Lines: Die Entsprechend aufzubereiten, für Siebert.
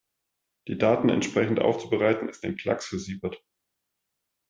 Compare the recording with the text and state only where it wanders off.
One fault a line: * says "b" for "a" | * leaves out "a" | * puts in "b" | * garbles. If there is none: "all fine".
* puts in "Daten"
* puts in "ist ein Klacks"